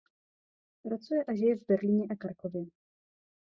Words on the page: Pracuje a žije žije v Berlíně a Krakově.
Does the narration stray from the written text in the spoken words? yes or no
yes